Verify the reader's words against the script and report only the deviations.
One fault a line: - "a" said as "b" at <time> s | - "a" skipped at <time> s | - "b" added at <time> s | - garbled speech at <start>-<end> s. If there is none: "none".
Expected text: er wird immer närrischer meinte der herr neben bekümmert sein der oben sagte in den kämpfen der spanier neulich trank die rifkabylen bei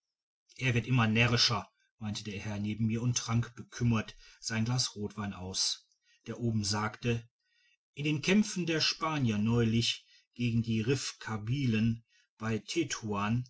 - "mir und trank" added at 2.9 s
- "glas rotwein aus" added at 4.6 s
- "trank" said as "gegen" at 10.3 s